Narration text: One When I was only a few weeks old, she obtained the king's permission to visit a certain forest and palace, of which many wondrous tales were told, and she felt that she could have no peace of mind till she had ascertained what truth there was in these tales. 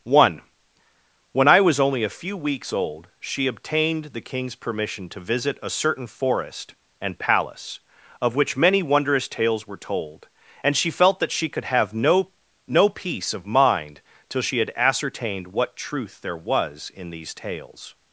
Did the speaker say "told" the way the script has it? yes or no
yes